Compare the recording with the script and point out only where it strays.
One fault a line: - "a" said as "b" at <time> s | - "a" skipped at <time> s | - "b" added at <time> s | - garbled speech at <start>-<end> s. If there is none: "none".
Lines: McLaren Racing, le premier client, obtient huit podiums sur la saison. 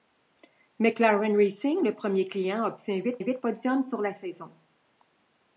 - "huit" added at 3.2 s